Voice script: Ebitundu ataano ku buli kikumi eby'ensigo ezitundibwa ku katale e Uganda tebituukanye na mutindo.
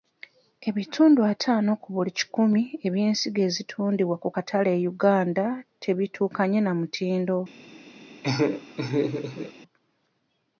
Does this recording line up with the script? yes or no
yes